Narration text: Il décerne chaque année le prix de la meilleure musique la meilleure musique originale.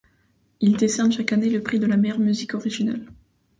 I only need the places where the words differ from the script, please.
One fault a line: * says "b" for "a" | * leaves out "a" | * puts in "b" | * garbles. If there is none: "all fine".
* leaves out "la meilleure musique"